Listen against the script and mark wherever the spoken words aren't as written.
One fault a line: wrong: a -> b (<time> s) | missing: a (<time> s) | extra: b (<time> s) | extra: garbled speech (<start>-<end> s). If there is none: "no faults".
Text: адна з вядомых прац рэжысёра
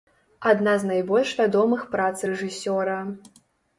extra: найбольш (0.9 s)